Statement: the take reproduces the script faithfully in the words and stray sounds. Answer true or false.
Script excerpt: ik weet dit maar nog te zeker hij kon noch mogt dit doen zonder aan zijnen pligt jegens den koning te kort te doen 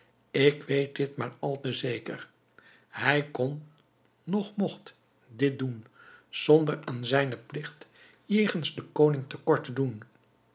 false